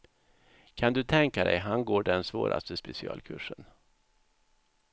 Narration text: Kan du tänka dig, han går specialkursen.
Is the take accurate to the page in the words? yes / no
no